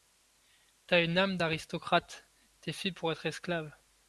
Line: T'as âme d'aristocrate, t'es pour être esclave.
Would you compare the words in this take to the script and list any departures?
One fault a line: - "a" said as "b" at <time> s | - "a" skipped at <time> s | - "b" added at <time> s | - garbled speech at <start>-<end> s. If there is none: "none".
- "une" added at 1.0 s
- "fait" added at 2.7 s